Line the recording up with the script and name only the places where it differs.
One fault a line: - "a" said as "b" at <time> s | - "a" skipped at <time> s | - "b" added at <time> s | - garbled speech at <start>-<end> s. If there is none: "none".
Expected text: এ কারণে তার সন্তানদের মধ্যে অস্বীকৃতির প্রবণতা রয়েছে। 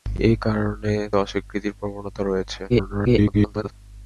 - "তার সন্তানদের মধ্যে" skipped at 0.9 s
- garbled speech at 2.7-3.7 s